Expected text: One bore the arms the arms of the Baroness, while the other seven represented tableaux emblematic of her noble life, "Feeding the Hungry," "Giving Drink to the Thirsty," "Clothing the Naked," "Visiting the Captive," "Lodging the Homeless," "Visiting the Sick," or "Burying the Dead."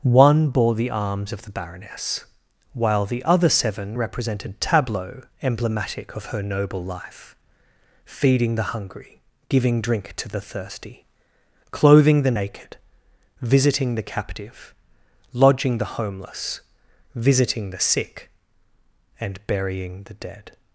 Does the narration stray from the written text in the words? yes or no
yes